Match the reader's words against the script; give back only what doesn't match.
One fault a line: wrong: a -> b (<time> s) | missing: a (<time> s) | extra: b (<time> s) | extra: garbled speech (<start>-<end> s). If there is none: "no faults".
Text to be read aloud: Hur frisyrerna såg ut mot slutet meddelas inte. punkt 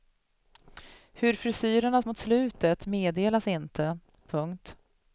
missing: såg ut (2.0 s)